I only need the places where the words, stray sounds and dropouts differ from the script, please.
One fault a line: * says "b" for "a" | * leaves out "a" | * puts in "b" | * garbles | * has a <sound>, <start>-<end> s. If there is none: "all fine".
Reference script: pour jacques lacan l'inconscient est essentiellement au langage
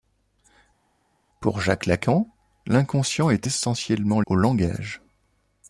all fine